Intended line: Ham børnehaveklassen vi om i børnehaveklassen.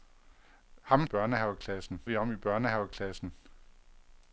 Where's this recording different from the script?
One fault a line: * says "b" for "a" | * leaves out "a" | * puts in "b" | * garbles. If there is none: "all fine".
all fine